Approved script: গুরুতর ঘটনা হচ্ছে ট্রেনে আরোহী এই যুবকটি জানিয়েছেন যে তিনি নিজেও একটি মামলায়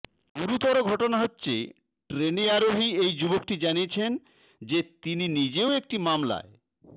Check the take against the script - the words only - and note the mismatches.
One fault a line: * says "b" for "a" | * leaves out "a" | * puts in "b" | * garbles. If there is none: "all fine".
all fine